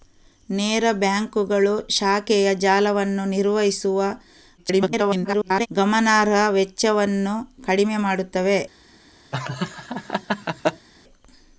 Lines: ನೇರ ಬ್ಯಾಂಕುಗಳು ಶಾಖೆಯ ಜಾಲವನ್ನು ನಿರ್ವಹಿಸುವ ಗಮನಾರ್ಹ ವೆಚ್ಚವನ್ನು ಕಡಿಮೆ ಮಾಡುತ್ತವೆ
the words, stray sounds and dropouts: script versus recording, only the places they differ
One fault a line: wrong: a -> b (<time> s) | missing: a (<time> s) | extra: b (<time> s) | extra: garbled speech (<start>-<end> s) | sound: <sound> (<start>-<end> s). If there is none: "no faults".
extra: garbled speech (4.6-5.7 s)
sound: laugh (9.3-10.9 s)